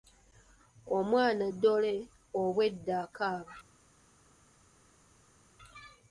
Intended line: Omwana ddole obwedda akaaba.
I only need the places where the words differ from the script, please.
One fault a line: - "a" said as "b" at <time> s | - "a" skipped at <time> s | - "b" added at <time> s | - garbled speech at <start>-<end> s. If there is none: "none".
none